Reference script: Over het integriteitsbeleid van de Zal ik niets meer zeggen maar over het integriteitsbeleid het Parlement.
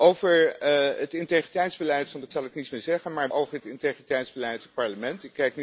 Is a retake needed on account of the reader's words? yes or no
no